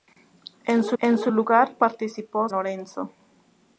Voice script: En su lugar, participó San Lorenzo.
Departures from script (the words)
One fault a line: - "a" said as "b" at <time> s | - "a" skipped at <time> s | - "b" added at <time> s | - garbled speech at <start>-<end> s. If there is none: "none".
- "en su" added at 1.0 s
- "San" skipped at 2.5 s